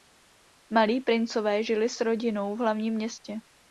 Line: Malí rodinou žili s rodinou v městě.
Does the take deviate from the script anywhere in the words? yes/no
yes